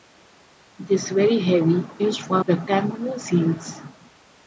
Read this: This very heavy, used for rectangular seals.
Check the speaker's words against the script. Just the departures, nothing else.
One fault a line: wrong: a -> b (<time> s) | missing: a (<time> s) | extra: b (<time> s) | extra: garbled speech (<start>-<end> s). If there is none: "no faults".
no faults